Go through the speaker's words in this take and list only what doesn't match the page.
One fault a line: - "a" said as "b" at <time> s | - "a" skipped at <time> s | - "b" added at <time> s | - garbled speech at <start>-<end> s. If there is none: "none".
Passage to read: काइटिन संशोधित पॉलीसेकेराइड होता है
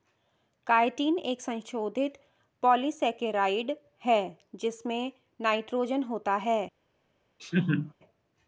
- "एक" added at 1.2 s
- "है जिसमें नाइट्रोजन" added at 4.0 s